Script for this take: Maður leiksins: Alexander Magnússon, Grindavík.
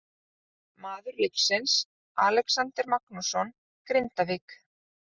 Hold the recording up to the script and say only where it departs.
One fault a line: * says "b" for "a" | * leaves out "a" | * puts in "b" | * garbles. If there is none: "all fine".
all fine